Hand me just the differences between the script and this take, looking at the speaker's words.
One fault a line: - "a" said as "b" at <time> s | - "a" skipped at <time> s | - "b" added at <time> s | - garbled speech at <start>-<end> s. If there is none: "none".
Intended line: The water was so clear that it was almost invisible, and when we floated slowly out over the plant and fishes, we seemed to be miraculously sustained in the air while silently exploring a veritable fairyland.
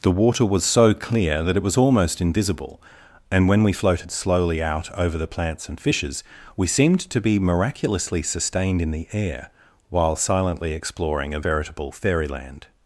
- "plant" said as "plants" at 5.3 s